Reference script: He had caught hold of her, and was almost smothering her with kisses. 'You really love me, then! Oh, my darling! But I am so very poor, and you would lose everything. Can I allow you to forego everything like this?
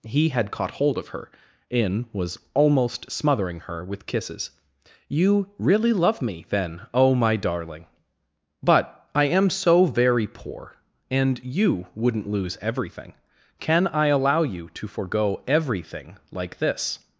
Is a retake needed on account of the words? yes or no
yes